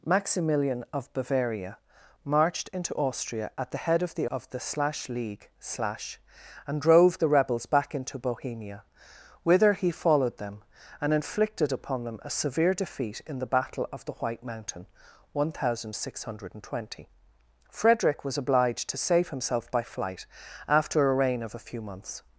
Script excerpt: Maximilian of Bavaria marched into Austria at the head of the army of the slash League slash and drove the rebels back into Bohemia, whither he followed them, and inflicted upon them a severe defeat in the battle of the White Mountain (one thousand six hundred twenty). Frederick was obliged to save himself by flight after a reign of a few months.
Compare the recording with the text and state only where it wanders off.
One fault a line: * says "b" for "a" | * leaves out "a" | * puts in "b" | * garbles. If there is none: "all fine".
* leaves out "army"